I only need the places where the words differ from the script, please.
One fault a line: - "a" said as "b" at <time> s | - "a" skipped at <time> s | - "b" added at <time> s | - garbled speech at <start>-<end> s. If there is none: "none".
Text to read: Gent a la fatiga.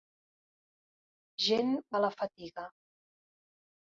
none